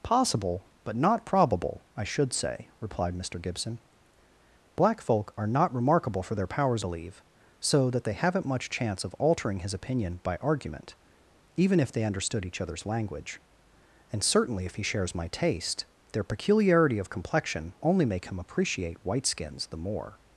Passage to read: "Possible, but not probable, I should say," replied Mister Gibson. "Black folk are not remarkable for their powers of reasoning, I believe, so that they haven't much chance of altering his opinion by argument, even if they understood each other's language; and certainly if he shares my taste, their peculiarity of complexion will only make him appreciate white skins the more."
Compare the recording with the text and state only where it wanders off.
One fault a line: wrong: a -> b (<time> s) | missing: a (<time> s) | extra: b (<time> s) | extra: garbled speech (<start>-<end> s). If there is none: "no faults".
missing: of reasoning I (6.8 s)
missing: will (17.7 s)